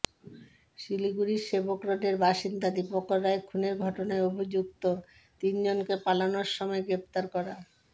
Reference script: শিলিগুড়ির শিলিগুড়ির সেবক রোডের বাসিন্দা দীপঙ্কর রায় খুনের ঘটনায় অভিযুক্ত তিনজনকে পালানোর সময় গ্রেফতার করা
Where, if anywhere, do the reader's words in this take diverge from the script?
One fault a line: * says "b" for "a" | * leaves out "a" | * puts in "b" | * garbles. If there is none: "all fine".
* leaves out "শিলিগুড়ির"